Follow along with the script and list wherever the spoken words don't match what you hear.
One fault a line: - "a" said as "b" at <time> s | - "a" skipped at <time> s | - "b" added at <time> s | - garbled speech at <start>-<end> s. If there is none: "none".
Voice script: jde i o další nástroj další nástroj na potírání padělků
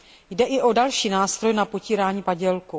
- "další nástroj" skipped at 1.5 s